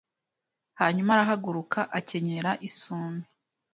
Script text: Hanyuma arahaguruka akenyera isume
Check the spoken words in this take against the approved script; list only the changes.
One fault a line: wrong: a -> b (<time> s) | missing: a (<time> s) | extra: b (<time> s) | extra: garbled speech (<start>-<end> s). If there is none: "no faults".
no faults